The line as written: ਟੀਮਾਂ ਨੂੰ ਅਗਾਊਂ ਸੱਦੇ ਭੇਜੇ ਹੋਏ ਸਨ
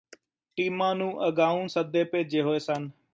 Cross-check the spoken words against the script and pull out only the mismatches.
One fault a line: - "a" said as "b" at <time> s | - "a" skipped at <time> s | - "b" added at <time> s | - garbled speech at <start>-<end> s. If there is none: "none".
none